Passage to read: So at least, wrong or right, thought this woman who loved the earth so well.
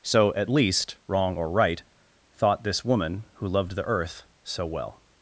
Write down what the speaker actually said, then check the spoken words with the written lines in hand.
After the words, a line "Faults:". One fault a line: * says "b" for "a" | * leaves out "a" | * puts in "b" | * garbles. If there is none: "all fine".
So at least, wrong or right, thought this woman who loved the earth so well.
Faults:
all fine